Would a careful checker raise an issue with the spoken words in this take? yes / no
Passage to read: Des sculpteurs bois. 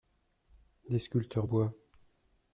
no